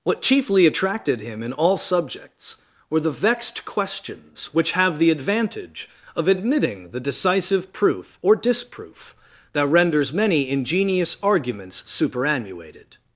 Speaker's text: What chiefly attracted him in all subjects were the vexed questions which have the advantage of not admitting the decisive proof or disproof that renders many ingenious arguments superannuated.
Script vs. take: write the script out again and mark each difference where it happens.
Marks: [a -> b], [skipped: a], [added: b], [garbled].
What chiefly attracted him in all subjects were the vexed questions which have the advantage of [skipped: not] admitting the decisive proof or disproof that renders many ingenious arguments superannuated.